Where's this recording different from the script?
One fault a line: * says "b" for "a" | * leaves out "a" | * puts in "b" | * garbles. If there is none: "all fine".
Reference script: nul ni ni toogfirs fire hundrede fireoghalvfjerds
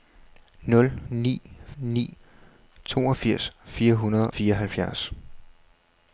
all fine